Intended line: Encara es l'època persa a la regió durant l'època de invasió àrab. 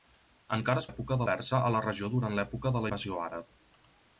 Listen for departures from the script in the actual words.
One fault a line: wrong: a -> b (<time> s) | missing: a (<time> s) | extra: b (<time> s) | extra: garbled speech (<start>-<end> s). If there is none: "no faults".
no faults